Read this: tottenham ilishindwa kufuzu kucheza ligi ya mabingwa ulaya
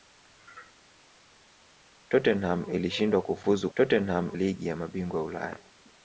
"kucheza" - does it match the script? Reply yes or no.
no